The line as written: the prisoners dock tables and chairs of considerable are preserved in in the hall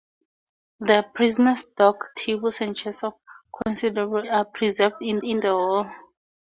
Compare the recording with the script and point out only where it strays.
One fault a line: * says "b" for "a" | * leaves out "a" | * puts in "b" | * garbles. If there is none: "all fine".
all fine